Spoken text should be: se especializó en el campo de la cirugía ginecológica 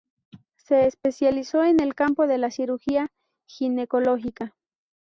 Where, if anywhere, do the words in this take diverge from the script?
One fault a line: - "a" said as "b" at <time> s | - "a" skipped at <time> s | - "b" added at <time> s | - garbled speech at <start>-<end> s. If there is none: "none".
none